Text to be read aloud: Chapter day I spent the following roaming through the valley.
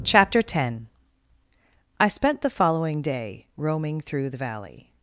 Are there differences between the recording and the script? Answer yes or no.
yes